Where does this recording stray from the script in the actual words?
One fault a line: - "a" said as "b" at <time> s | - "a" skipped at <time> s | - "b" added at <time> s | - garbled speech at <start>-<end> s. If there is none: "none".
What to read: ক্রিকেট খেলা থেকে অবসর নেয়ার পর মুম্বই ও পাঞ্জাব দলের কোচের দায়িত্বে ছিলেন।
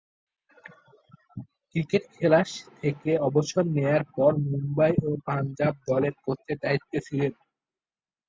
none